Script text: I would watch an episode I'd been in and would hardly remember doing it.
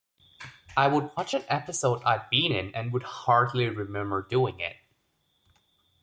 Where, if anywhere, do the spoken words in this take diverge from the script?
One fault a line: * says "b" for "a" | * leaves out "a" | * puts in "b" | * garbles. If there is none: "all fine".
all fine